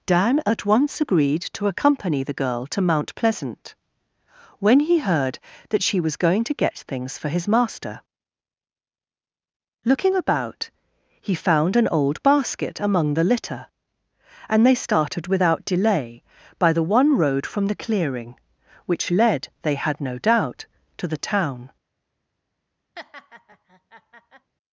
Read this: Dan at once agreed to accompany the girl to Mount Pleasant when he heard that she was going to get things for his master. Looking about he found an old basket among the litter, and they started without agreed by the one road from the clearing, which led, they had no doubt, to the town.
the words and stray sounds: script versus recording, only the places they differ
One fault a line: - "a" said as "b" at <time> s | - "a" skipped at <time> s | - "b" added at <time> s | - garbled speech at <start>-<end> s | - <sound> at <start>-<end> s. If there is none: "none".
- "agreed" said as "delay" at 15.6 s
- laugh at 23.0-24.5 s